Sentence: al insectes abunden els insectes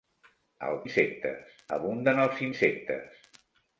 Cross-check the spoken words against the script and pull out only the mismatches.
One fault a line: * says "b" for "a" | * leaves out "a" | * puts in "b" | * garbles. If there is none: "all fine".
all fine